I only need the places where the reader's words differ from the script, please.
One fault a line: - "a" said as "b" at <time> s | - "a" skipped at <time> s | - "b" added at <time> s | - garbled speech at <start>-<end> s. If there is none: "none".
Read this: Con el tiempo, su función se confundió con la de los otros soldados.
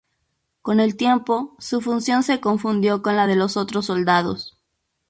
none